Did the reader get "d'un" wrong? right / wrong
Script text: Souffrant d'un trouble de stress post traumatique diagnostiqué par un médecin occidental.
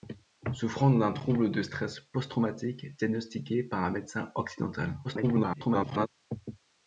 right